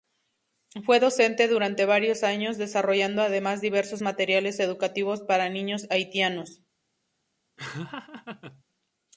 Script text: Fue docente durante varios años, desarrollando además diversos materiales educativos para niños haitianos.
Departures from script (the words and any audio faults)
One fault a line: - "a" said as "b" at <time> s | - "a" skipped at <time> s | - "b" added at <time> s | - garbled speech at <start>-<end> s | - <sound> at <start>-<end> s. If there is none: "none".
- laugh at 7.6-8.6 s